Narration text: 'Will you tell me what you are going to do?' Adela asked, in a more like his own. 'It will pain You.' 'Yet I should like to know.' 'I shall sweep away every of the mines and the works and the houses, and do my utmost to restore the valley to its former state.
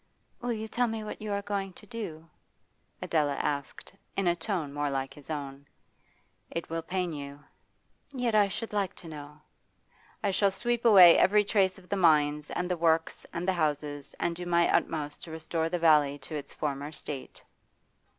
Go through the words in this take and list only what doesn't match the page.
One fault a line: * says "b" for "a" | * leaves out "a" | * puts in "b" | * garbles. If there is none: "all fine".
* puts in "tone"
* puts in "trace"